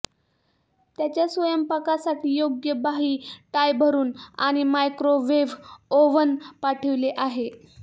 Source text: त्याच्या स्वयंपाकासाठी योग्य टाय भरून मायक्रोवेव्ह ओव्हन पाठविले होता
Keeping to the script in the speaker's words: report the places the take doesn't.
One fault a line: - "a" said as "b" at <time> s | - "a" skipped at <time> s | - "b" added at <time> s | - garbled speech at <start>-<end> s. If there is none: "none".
- "बाही" added at 2.8 s
- "आणि" added at 4.4 s
- "होता" said as "आहे" at 7.2 s